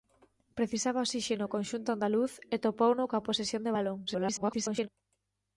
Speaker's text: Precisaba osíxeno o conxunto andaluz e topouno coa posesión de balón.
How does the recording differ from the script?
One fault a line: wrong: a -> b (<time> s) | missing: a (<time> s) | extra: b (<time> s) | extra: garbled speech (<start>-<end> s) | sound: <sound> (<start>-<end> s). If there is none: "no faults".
extra: garbled speech (4.1-4.9 s)